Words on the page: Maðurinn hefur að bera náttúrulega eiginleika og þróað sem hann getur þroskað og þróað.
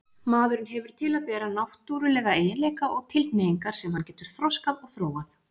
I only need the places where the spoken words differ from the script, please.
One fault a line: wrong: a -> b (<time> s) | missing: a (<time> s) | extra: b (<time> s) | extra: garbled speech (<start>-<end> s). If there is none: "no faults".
extra: til (1.0 s)
wrong: þróað -> tilhneigingar (3.2 s)